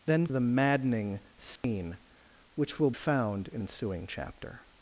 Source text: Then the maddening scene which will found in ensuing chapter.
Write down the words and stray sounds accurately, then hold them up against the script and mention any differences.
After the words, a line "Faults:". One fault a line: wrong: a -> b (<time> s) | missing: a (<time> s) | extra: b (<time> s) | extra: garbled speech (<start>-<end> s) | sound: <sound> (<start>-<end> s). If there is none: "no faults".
Then the maddening scene which will found in ensuing chapter.
Faults:
sound: dropout (1.6-1.6 s)